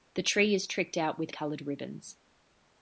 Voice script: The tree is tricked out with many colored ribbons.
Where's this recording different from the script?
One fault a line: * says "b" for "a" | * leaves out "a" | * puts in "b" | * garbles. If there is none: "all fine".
* leaves out "many"